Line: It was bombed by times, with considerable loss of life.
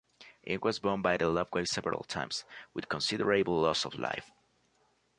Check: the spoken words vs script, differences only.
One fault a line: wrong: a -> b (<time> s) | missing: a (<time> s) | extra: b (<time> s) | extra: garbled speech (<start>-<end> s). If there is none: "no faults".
extra: the Luftwaffe several (1.2 s)